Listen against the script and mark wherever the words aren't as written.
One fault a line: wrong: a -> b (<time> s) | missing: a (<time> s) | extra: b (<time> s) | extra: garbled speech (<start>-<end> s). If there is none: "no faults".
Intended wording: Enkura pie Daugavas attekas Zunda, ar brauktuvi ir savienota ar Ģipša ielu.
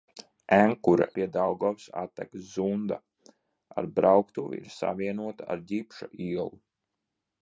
no faults